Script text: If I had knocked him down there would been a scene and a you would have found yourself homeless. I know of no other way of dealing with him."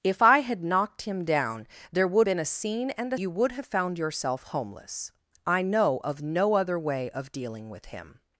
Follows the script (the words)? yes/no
yes